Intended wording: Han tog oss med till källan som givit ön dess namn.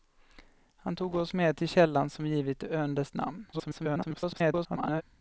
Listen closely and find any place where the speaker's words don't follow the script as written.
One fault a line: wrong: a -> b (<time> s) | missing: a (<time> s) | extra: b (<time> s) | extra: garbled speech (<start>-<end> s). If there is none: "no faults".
extra: garbled speech (3.5-5.0 s)